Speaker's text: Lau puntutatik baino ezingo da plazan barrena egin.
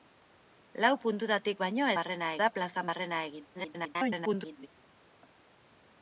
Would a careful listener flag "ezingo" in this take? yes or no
yes